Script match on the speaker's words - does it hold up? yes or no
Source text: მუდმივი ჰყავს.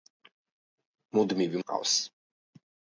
yes